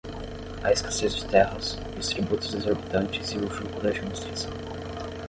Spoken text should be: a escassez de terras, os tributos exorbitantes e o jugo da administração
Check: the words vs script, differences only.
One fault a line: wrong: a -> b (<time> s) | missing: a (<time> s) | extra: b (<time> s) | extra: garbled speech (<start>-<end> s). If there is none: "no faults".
no faults